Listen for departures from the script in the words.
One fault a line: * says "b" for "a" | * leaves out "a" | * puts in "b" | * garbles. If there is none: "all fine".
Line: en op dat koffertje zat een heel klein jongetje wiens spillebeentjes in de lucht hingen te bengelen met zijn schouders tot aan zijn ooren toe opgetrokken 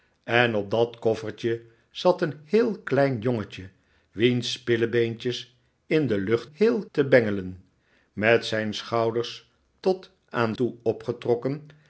* says "heel" for "hingen"
* leaves out "zijn ooren"